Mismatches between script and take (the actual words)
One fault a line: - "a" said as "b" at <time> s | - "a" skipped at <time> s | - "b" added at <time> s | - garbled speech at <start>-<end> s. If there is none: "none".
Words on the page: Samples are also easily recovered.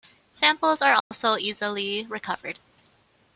none